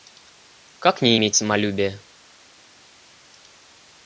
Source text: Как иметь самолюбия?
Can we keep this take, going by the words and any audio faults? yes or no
no